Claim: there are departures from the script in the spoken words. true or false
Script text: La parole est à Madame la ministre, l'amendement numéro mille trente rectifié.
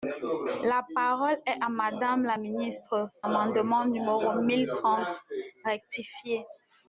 false